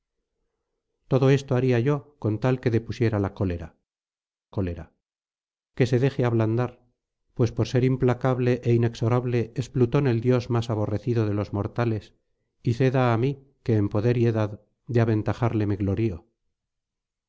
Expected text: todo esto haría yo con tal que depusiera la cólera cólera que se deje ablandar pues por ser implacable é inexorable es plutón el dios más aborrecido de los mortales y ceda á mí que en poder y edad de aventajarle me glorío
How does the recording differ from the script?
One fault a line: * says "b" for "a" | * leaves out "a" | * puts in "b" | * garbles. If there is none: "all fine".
all fine